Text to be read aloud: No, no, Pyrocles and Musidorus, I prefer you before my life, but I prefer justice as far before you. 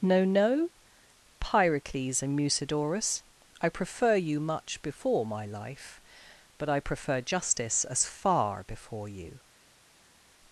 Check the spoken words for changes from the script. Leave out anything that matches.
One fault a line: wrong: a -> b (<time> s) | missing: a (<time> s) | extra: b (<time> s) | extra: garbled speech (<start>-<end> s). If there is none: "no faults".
extra: much (4.4 s)